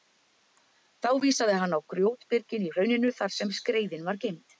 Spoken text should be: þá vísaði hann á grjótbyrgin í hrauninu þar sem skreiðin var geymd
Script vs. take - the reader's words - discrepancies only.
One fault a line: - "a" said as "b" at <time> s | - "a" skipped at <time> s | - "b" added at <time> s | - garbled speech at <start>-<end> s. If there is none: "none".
none